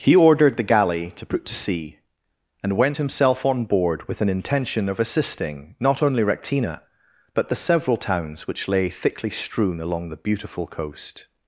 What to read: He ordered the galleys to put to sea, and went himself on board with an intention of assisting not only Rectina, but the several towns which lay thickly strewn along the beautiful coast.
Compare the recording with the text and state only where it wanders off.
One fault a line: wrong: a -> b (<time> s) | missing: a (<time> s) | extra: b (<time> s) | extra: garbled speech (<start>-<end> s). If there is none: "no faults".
wrong: galleys -> galley (0.6 s)